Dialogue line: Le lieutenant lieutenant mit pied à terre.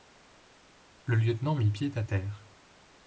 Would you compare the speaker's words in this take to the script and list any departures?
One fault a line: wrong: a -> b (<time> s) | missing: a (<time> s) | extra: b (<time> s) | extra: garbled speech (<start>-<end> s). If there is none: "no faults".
missing: lieutenant (1.5 s)